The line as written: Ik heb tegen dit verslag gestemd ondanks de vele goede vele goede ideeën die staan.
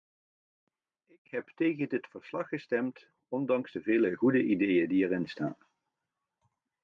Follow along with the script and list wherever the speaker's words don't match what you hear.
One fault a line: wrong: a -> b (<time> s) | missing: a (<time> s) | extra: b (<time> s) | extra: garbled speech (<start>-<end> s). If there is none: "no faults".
missing: vele goede (4.4 s)
extra: erin (5.0 s)